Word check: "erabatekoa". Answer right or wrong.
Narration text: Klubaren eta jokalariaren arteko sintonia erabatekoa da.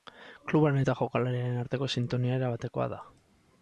right